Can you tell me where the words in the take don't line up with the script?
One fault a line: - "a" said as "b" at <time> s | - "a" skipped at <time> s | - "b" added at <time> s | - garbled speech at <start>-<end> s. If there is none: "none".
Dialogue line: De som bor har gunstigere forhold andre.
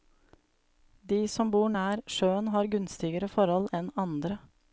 - "nær sjøen" added at 1.7 s
- "enn" added at 3.8 s